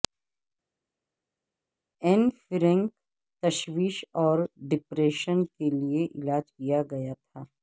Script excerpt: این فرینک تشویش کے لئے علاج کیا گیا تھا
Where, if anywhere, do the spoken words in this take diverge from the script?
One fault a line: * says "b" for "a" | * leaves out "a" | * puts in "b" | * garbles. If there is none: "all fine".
* puts in "اور ڈپریشن"